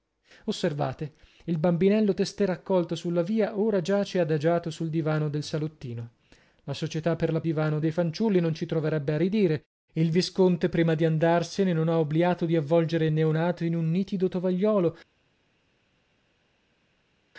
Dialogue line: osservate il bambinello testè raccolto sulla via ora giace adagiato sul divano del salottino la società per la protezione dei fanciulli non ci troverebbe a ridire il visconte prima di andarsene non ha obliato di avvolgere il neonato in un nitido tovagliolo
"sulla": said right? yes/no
yes